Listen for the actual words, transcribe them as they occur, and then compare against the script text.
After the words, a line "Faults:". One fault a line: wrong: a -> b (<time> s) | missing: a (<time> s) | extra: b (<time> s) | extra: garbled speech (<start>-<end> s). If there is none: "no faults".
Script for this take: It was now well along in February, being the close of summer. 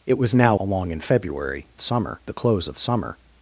It was now along in February, summer the close of summer.
Faults:
missing: well (0.6 s)
wrong: being -> summer (1.8 s)